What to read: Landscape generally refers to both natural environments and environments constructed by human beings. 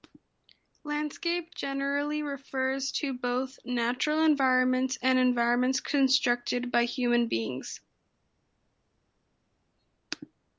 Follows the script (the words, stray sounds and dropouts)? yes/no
yes